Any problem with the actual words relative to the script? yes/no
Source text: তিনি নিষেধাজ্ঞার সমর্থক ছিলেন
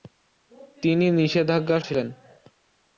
yes